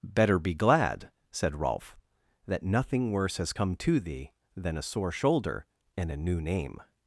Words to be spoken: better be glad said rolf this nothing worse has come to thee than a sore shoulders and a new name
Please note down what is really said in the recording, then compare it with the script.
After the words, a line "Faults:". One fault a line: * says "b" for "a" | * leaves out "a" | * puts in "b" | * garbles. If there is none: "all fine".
better be glad said rolf that nothing worse has come to thee than a sore shoulder and a new name
Faults:
* says "that" for "this"
* says "shoulder" for "shoulders"